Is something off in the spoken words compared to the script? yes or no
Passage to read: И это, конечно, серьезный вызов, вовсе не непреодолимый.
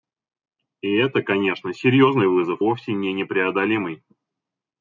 no